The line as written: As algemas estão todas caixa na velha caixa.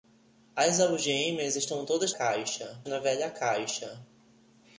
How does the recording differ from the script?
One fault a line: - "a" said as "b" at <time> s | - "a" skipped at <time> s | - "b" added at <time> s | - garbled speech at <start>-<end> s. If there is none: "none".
none